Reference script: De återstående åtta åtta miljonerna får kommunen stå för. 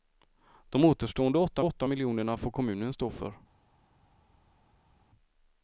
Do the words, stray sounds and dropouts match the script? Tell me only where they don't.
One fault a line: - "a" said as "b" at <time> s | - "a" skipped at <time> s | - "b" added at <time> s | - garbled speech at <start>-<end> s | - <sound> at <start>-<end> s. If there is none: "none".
none